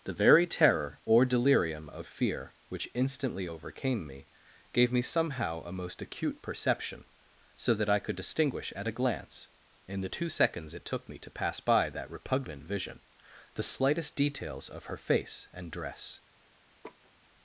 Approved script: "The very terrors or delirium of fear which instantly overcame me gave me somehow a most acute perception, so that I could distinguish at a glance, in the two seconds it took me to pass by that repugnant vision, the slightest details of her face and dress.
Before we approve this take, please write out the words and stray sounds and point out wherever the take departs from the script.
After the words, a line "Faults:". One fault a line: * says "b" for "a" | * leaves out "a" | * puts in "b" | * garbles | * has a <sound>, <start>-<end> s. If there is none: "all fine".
"The very terror or delirium of fear which instantly overcame me gave me somehow a most acute perception, so that I could distinguish at a glance, in the two seconds it took me to pass by that repugnant vision, the slightest details of her face and dress.
Faults:
* says "terror" for "terrors"
* has a laugh, 16.8-17.1 s